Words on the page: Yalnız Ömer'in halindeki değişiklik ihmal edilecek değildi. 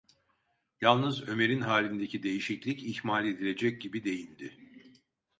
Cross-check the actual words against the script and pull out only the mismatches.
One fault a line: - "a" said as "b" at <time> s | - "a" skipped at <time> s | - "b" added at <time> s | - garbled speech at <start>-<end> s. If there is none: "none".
- "gibi" added at 3.8 s